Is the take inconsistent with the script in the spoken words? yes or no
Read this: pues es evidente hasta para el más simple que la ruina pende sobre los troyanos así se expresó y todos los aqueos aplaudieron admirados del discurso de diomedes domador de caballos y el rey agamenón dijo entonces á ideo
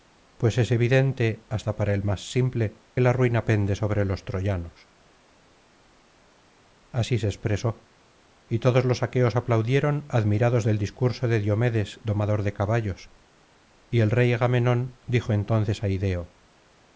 yes